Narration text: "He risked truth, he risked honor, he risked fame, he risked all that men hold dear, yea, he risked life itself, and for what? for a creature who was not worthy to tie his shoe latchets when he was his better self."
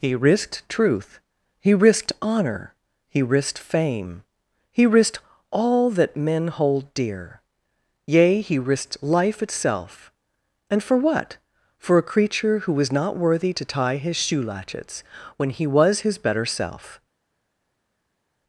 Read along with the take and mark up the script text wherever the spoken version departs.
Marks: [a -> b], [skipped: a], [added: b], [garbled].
"He risked truth, he risked honor, he risked fame, he risked all that men hold dear, yea, he risked life itself, and for what? for a creature who was not worthy to tie his shoe latchets when he was his better self."